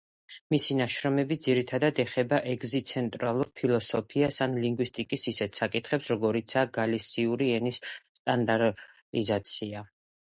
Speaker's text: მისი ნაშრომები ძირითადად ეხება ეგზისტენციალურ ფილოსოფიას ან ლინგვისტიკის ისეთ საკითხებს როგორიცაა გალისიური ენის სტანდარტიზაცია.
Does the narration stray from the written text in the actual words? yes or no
no